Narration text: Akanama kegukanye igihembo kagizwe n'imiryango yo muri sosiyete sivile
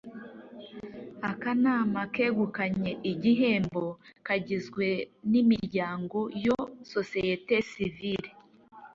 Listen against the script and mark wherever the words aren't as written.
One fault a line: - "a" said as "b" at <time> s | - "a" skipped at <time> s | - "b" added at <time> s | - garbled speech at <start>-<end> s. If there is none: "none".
- "muri" skipped at 6.6 s